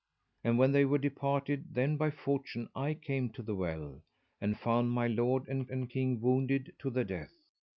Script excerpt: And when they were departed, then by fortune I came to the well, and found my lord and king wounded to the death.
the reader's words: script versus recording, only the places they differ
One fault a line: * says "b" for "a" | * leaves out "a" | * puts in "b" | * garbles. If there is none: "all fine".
* puts in "and"